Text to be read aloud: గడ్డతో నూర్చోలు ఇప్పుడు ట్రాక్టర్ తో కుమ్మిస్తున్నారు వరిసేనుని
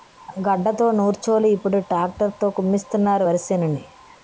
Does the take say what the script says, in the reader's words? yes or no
yes